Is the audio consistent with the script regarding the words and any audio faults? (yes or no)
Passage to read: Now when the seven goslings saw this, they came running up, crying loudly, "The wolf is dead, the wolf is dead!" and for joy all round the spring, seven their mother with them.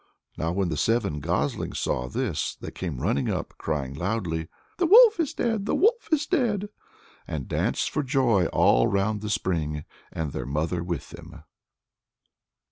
no